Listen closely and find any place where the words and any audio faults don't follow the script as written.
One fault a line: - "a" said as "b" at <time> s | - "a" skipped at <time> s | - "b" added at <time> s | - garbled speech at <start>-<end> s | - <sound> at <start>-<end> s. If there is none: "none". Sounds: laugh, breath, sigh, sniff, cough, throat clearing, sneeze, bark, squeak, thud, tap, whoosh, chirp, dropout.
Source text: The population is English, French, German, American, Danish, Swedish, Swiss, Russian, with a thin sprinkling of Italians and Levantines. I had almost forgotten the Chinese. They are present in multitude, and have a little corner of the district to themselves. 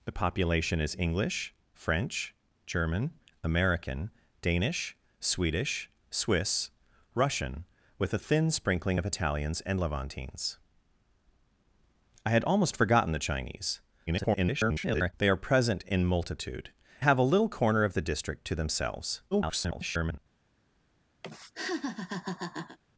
- garbled speech at 14.1-15.1 s
- "and" skipped at 16.7 s
- garbled speech at 19.3-20.2 s
- laugh at 21.2-22.8 s